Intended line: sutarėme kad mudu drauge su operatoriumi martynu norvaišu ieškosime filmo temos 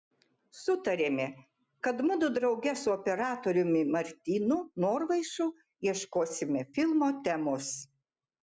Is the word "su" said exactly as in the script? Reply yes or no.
yes